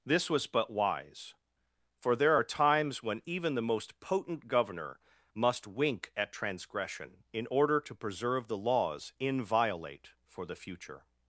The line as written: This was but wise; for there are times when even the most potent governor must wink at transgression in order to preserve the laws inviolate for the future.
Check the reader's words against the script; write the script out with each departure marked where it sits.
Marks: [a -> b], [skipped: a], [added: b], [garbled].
This was but wise; for there are times when even the most potent governor must wink at transgression in order to preserve the laws inviolate for the future.